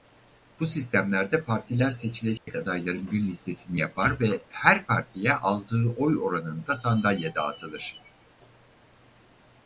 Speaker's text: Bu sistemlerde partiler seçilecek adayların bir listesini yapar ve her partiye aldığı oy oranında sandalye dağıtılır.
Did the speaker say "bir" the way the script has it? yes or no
yes